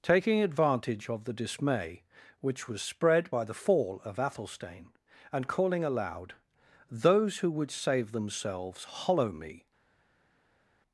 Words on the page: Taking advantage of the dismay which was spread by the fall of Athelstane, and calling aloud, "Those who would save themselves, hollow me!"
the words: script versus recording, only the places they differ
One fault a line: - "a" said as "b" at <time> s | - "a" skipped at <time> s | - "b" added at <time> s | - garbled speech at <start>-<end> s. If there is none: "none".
none